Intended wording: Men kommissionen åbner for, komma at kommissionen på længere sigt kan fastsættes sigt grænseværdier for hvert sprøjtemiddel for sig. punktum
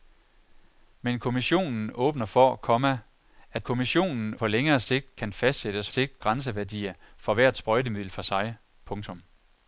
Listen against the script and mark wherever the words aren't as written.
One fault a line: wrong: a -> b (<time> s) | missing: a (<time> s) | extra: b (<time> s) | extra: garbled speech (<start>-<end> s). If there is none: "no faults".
no faults